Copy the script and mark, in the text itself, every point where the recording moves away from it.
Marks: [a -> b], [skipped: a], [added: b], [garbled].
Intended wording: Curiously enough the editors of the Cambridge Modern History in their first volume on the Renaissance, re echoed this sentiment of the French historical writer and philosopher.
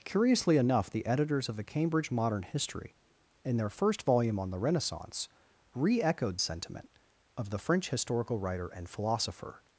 Curiously enough the editors of the Cambridge Modern History in their first volume on the Renaissance, re echoed [skipped: this] sentiment of the French historical writer and philosopher.